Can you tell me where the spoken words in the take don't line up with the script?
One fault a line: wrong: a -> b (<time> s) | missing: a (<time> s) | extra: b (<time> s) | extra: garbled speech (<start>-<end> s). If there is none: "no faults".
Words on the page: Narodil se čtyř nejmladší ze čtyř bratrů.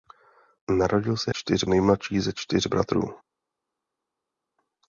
no faults